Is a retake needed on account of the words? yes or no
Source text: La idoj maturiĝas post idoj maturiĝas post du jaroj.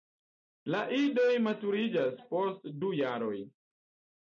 yes